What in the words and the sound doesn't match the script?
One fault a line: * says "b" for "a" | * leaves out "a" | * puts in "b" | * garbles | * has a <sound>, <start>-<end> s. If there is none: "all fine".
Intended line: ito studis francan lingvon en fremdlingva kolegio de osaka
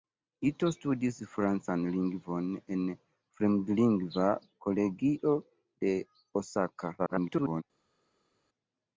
* garbles